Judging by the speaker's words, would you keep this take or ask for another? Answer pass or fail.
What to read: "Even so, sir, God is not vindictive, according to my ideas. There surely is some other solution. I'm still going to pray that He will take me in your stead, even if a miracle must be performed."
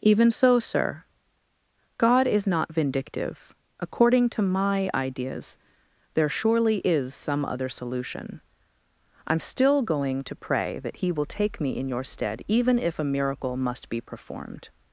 pass